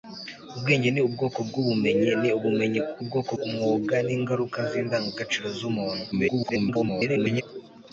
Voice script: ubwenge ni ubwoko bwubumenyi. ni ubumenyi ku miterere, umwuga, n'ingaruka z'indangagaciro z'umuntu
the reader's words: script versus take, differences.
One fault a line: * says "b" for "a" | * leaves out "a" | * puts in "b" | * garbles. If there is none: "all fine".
* says "ubwoko" for "miterere"
* garbles